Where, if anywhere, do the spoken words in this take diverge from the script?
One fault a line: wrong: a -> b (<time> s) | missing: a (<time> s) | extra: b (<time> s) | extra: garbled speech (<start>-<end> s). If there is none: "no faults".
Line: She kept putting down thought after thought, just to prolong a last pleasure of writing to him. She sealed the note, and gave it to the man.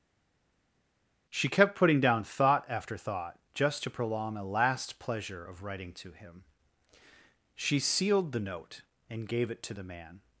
no faults